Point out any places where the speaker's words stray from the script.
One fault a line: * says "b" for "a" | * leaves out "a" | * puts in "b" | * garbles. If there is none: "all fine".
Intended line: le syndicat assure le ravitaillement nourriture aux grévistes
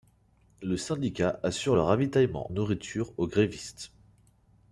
all fine